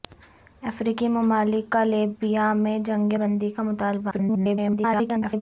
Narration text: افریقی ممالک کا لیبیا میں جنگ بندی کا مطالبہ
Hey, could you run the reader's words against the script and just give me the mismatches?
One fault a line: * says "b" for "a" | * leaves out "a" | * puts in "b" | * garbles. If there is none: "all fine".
* garbles